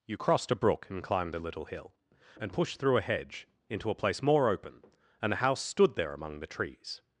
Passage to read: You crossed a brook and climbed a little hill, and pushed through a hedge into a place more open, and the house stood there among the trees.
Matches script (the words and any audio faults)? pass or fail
fail